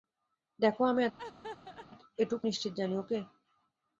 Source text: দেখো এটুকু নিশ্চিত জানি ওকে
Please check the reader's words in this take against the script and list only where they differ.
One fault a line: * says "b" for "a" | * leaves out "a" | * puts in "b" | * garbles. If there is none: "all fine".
all fine